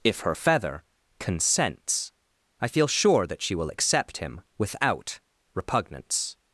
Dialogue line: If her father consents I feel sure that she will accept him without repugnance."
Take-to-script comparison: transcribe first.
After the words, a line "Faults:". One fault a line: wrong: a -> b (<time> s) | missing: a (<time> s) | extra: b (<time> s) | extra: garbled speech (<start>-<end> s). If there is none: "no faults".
If her feather consents I feel sure that she will accept him without repugnance."
Faults:
wrong: father -> feather (0.3 s)